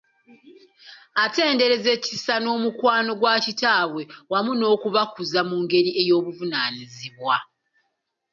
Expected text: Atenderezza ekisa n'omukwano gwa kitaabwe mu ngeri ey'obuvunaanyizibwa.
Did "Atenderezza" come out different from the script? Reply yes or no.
no